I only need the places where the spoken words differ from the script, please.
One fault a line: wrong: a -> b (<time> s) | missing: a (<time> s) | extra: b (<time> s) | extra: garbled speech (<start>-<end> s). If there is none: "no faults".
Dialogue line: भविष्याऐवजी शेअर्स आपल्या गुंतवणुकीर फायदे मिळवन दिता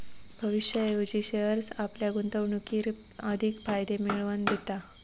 extra: अधिक (3.2 s)